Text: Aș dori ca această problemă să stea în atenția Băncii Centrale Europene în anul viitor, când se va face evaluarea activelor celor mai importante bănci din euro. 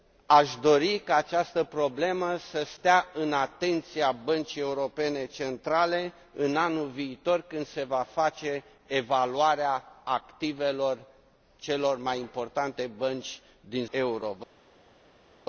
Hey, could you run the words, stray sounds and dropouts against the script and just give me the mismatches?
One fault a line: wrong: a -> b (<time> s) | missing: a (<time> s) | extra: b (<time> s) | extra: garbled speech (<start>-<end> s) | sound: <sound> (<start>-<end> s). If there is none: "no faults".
no faults